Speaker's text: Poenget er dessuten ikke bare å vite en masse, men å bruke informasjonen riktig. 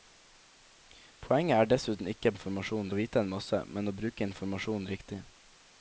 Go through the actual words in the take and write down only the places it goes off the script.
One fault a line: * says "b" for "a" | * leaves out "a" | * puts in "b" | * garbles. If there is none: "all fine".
* says "informasjonen" for "bare"